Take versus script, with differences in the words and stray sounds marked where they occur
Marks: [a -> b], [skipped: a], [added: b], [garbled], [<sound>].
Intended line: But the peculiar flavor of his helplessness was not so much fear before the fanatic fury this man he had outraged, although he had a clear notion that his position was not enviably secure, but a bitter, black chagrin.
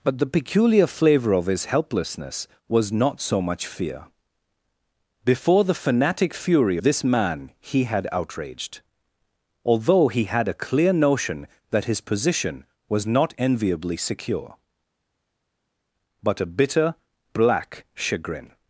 But the peculiar flavor of his helplessness was not so much fear before the fanatic fury this man he had outraged, although he had a clear notion that his position was not enviably secure, but a bitter, black chagrin.